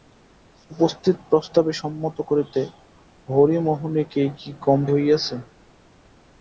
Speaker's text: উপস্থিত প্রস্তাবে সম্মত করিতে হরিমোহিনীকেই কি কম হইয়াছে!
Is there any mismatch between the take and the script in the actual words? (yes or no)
no